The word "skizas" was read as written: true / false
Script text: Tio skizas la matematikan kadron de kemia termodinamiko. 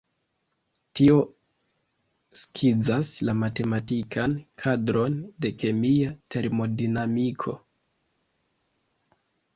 true